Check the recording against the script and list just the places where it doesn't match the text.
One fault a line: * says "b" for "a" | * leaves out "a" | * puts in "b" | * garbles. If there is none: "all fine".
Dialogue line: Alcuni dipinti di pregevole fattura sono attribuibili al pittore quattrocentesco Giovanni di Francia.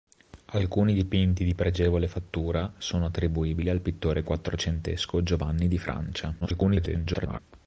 * garbles